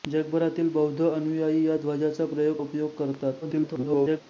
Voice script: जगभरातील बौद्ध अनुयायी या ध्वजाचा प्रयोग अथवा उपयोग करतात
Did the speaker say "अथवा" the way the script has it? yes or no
no